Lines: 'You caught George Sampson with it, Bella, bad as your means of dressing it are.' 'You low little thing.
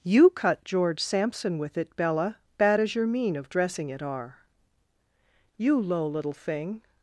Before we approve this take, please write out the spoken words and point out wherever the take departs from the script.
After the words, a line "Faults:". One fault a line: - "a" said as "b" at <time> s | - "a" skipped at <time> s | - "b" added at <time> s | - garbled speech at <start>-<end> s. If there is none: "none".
'You cut George Sampson with it, Bella, bad as your mean of dressing it are.' 'You low little thing.
Faults:
- "caught" said as "cut" at 0.3 s
- "means" said as "mean" at 3.1 s